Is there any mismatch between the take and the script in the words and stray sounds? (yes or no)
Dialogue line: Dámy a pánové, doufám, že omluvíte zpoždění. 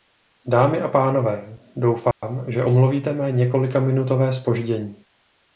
yes